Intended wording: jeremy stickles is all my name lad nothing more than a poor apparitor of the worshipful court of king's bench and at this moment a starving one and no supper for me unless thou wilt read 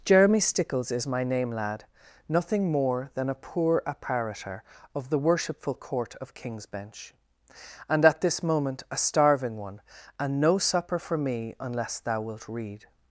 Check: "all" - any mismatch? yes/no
yes